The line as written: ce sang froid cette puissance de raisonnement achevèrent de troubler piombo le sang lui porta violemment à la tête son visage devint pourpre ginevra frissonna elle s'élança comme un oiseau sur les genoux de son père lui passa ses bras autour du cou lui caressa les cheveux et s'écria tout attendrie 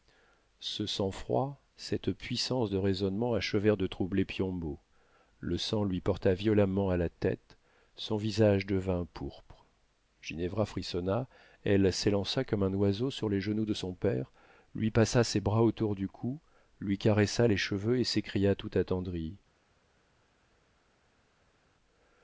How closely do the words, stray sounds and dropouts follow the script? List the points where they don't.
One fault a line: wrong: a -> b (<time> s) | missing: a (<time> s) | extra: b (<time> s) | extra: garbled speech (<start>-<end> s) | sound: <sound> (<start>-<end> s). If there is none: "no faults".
no faults